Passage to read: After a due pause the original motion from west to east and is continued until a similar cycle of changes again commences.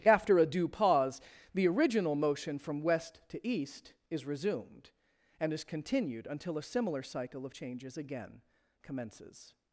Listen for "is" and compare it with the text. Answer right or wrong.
right